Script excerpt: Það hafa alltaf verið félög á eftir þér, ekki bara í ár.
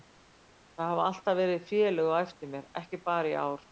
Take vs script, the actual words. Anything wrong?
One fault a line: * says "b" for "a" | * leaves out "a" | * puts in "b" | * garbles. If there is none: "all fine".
* says "mér" for "þér"